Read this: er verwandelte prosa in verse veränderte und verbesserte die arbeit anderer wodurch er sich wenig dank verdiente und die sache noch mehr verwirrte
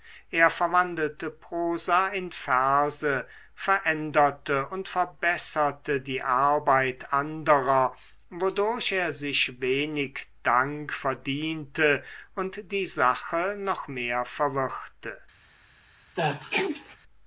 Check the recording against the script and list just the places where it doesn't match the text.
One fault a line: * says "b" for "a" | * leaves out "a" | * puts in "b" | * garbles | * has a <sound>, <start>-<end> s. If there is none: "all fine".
* has a sneeze, 16.2-17.0 s